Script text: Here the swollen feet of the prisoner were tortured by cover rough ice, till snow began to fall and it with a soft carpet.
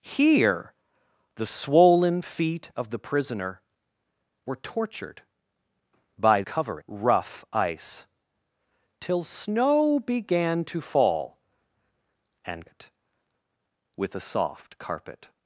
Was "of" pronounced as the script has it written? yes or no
yes